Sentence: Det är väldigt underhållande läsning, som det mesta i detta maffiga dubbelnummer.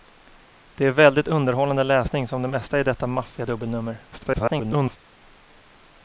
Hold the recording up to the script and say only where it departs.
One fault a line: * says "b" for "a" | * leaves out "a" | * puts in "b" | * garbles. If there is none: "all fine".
* garbles